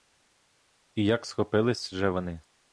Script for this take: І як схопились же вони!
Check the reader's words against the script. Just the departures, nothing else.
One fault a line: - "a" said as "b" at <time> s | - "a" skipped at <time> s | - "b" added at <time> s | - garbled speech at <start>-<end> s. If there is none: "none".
none